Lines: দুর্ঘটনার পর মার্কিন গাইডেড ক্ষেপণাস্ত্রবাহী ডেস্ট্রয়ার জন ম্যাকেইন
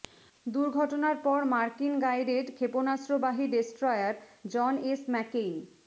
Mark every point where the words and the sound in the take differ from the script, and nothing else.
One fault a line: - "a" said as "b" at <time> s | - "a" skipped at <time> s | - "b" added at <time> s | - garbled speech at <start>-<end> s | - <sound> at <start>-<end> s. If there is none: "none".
- "এস" added at 4.8 s